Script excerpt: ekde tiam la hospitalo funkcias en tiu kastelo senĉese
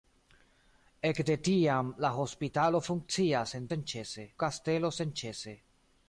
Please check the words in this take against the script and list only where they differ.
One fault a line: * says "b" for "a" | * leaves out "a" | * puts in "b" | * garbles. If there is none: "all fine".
* says "senĉese" for "tiu"